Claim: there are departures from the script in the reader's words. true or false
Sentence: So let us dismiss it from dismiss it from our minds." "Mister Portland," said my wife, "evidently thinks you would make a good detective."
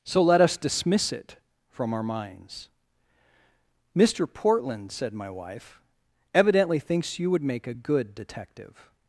true